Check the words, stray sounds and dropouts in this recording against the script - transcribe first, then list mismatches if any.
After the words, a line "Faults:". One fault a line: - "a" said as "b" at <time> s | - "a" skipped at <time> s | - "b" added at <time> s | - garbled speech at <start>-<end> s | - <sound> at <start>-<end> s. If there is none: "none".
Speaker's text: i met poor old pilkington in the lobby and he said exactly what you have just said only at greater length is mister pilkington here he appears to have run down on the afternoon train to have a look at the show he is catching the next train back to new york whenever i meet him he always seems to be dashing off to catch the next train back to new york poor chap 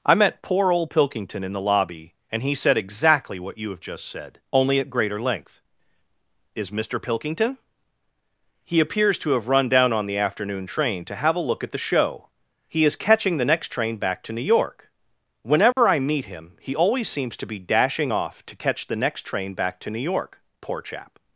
i met poor old pilkington in the lobby and he said exactly what you have just said only at greater length is mister pilkington he appears to have run down on the afternoon train to have a look at the show he is catching the next train back to new york whenever i meet him he always seems to be dashing off to catch the next train back to new york poor chap
Faults:
- "here" skipped at 7.6 s
- dropout at 15.7-15.8 s